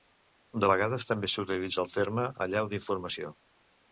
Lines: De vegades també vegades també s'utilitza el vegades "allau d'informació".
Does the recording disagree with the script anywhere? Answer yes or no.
yes